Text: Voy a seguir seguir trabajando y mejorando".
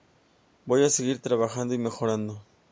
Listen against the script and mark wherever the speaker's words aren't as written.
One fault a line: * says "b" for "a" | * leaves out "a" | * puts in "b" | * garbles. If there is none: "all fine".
* leaves out "seguir"